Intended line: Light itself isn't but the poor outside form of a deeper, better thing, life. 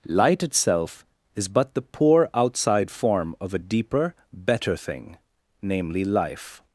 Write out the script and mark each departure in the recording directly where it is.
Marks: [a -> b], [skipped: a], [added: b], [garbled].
Light itself [isn't -> is] but the poor outside form of a deeper, better thing, [added: namely] life.